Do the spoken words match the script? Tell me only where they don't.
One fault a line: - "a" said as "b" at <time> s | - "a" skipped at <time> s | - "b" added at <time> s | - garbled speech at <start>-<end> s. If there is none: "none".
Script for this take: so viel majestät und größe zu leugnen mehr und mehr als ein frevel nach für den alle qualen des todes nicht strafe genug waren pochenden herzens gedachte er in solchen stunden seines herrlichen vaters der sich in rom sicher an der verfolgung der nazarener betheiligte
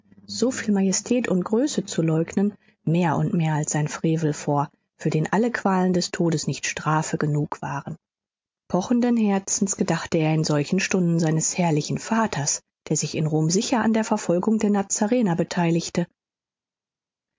- "nach" said as "vor" at 4.3 s